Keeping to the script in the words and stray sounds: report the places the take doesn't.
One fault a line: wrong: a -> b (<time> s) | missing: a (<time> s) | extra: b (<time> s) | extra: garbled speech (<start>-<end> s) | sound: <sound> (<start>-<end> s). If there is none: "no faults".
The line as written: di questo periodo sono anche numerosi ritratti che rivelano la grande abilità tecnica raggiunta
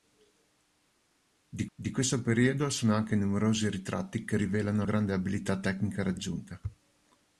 extra: di (1.8 s)
missing: la (4.9 s)